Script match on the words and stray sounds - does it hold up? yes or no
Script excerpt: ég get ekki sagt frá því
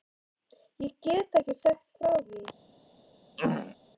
no